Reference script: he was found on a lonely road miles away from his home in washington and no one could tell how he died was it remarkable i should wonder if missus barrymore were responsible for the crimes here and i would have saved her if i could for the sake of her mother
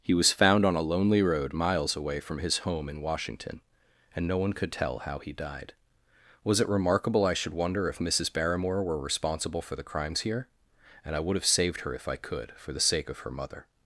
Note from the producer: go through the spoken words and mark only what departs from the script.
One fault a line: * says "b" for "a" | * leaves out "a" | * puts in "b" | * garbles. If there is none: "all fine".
all fine